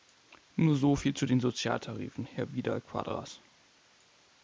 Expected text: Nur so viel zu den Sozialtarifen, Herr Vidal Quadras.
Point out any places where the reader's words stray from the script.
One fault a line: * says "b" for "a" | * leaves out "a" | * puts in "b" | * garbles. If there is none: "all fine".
all fine